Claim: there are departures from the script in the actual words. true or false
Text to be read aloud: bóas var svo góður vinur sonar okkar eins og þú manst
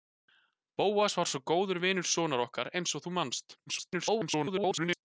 true